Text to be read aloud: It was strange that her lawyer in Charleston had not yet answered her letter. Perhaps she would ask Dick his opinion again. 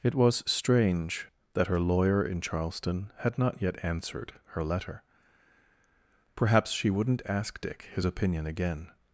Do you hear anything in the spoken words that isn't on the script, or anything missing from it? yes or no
yes